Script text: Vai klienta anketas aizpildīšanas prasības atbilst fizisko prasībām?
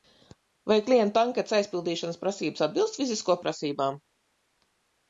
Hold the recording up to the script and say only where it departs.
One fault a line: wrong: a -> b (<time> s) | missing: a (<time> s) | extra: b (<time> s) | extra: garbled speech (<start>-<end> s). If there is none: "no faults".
no faults